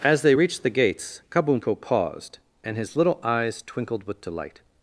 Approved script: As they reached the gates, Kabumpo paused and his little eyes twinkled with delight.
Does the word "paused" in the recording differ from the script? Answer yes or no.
no